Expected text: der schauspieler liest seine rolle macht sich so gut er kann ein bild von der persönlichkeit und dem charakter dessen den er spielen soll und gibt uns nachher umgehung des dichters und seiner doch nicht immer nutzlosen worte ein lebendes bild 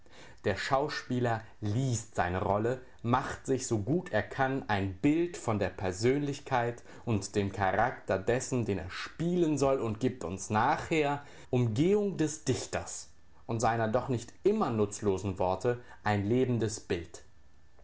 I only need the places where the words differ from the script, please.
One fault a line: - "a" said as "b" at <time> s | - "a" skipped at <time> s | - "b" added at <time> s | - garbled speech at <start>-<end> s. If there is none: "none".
none